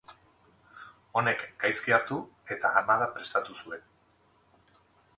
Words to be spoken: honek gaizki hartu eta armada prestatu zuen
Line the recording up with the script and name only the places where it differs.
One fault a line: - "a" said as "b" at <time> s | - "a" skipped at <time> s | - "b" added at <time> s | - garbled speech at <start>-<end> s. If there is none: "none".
none